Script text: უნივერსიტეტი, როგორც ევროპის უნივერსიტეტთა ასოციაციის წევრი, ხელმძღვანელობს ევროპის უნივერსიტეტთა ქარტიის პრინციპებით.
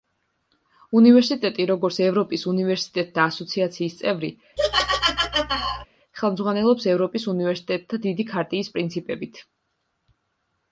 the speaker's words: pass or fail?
fail